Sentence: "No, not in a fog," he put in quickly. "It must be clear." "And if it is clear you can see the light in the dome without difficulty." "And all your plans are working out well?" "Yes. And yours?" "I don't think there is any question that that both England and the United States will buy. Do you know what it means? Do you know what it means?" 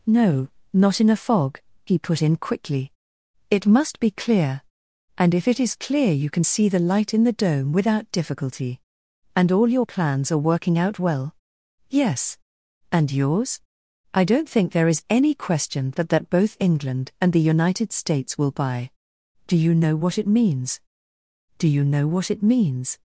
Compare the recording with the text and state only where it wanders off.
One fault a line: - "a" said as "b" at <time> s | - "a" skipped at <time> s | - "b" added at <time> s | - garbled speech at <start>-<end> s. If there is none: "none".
none